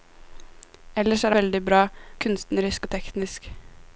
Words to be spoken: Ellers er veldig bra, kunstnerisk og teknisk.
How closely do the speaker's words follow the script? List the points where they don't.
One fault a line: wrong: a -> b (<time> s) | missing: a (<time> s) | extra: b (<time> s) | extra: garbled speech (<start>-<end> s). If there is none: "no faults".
no faults